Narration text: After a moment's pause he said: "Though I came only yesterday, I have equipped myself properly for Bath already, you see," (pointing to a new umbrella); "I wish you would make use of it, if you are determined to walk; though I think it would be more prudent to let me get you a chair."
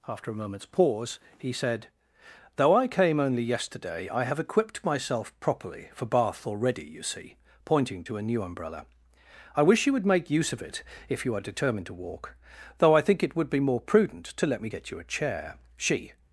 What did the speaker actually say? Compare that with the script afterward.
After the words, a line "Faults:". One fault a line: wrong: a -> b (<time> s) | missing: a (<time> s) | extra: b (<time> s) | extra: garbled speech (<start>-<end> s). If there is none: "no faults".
After a moment's pause he said: "Though I came only yesterday, I have equipped myself properly for Bath already, you see," (pointing to a new umbrella); "I wish you would make use of it, if you are determined to walk; though I think it would be more prudent to let me get you a chair." She
Faults:
extra: She (15.8 s)